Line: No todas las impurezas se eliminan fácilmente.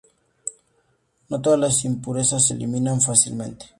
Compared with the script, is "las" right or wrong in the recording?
right